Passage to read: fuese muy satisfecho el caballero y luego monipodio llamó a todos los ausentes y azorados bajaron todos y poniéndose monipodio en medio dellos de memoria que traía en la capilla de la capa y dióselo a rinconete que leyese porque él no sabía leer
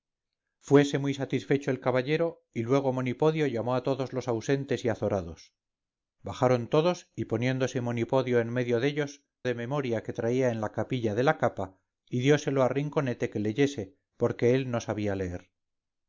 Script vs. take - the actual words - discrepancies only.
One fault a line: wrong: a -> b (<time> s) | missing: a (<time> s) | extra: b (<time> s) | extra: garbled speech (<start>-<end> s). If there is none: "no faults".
no faults